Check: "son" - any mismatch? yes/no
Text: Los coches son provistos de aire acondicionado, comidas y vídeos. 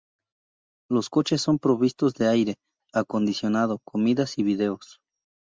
no